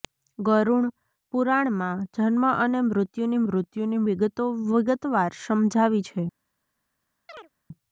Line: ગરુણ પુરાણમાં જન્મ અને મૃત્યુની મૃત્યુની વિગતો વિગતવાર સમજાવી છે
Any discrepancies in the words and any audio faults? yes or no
yes